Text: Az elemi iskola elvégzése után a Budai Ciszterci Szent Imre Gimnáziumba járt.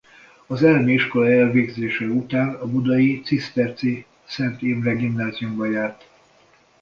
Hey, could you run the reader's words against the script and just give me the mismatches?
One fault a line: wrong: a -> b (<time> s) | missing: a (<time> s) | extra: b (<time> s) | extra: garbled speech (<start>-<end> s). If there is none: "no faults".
no faults